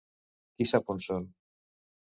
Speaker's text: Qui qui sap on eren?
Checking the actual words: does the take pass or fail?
fail